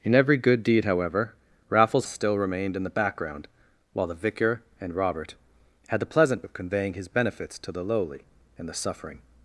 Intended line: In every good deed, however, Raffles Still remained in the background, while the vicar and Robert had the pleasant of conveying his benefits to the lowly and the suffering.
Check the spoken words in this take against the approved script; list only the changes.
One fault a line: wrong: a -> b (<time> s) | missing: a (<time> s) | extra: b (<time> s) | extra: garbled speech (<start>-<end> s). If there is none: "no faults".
no faults